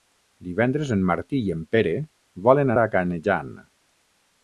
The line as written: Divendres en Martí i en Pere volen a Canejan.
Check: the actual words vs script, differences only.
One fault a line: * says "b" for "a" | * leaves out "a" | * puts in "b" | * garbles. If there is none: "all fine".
all fine